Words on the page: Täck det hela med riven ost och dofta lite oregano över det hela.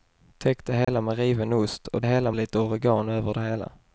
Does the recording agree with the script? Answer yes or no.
no